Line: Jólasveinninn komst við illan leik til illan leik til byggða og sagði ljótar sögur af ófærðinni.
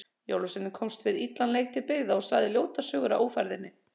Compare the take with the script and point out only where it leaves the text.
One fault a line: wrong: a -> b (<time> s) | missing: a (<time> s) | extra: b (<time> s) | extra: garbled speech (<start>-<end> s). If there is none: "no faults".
missing: illan leik til (1.9 s)